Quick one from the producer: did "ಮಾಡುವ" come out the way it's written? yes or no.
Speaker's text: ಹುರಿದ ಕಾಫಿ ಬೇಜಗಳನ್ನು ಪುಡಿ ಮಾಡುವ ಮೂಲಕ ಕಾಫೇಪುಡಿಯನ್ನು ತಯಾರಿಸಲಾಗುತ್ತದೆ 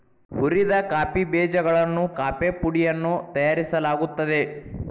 no